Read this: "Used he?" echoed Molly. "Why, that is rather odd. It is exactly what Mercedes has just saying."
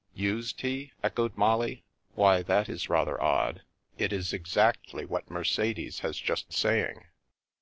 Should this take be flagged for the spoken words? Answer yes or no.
no